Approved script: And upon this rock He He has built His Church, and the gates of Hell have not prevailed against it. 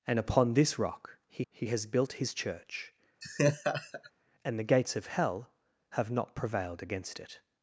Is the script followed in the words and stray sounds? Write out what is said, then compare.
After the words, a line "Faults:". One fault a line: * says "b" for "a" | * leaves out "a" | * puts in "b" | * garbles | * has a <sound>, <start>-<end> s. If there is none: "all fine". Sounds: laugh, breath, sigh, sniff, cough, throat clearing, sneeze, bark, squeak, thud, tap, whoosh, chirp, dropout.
And upon this rock He He has built His Church, and the gates of Hell have not prevailed against it.
Faults:
* has a laugh, 3.2-4.1 s